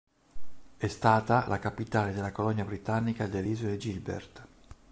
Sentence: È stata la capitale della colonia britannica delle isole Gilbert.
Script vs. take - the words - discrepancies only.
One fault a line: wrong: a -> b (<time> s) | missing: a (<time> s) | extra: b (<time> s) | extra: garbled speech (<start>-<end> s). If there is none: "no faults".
no faults